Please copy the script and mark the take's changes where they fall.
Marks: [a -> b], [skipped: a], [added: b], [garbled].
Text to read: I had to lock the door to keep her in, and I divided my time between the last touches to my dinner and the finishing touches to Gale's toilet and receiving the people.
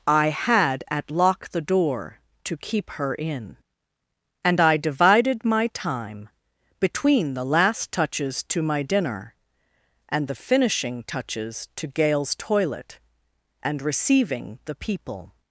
I had [to -> at] lock the door to keep her in, and I divided my time between the last touches to my dinner and the finishing touches to Gale's toilet and receiving the people.